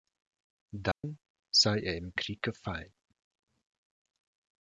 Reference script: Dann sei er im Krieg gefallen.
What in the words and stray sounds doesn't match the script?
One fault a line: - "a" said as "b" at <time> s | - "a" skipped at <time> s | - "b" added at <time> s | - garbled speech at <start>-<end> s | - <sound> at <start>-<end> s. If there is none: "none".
- dropout at 0.9-1.0 s